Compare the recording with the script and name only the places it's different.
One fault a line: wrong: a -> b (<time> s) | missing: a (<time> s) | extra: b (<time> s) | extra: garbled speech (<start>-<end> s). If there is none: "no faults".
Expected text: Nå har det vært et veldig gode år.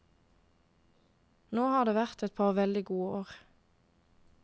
extra: par (2.4 s)